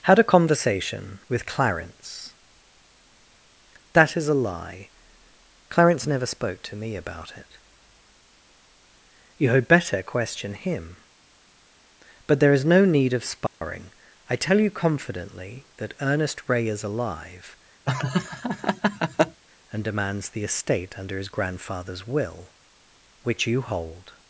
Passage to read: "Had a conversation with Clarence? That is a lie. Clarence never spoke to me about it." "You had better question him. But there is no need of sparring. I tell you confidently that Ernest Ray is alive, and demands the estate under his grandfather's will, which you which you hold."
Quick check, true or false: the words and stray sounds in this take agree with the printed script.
false